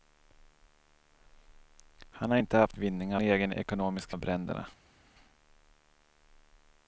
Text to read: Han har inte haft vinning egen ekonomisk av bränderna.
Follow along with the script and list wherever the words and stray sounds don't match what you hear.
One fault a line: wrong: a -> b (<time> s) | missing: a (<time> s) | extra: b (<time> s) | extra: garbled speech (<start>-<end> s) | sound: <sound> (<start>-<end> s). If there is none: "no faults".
no faults